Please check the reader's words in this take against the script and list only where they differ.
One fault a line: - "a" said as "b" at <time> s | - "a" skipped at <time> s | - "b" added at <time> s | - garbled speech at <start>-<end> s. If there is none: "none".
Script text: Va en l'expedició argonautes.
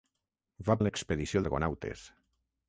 none